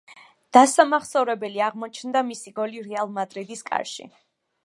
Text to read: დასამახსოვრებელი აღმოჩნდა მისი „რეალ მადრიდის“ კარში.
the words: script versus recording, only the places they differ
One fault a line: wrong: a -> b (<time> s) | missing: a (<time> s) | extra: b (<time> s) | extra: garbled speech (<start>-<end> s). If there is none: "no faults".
extra: გოლი (2.6 s)